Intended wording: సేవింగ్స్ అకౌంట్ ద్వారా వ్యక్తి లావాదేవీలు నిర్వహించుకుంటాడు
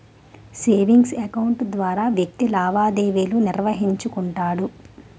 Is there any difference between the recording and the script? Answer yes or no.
no